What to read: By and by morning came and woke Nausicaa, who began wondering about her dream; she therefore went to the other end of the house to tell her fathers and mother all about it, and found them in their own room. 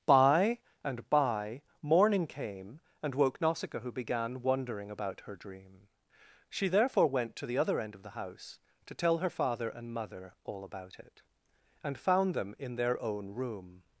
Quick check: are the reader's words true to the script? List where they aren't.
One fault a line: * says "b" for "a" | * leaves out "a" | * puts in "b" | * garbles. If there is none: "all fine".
* says "father" for "fathers"